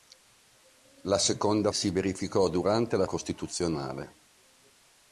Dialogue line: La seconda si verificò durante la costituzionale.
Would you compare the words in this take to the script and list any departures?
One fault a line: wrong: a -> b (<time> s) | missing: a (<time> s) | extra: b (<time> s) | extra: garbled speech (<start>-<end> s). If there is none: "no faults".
no faults